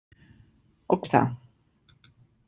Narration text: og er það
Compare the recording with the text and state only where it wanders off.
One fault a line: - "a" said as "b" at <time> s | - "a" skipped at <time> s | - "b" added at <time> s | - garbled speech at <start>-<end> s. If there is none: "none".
none